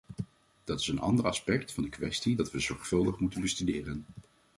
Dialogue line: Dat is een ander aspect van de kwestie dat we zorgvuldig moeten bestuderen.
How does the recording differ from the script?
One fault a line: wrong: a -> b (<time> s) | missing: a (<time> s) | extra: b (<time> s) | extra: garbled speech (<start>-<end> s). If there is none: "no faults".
no faults